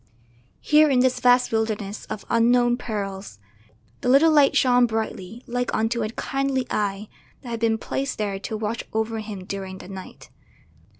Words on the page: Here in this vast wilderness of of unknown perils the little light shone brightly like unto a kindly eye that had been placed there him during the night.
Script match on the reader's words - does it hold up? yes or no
no